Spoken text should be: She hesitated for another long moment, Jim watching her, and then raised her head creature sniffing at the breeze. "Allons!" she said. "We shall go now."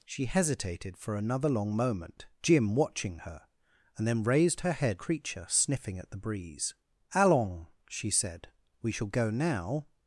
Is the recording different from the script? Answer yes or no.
no